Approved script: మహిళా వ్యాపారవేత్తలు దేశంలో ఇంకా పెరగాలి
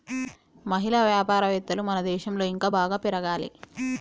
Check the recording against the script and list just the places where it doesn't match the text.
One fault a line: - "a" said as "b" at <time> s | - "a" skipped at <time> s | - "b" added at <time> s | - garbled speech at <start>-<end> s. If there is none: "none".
- "మన" added at 1.8 s
- "బాగా" added at 2.8 s